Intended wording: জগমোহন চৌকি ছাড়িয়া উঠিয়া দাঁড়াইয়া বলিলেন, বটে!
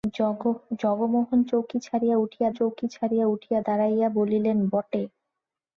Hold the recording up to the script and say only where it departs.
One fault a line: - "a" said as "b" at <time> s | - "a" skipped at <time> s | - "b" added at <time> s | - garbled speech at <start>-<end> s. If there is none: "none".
- "চৌকি ছাড়িয়া উঠিয়া" added at 2.5 s